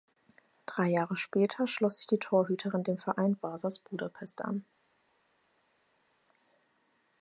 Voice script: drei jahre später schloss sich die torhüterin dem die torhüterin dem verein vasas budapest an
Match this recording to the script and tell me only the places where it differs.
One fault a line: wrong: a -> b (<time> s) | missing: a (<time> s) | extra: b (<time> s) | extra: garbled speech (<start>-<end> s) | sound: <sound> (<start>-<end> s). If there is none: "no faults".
missing: die torhüterin dem (3.0 s)